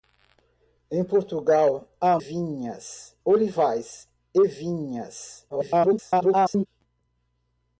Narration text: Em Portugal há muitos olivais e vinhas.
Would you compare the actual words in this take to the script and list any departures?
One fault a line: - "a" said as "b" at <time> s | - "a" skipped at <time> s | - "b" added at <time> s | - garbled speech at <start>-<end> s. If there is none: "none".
- "muitos" said as "vinhas" at 2.2 s
- garbled speech at 5.5-6.7 s